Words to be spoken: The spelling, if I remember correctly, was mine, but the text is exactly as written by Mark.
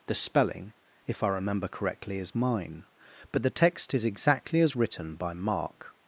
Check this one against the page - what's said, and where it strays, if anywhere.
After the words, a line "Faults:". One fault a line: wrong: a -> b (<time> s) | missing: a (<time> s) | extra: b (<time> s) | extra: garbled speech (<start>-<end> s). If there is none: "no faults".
The spelling, if I remember correctly, is mine, but the text is exactly as written by Mark.
Faults:
wrong: was -> is (2.2 s)